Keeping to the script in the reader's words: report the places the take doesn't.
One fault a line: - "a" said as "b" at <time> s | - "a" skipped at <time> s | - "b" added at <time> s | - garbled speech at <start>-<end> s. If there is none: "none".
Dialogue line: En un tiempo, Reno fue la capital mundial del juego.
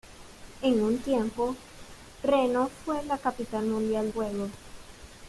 - "del" skipped at 4.1 s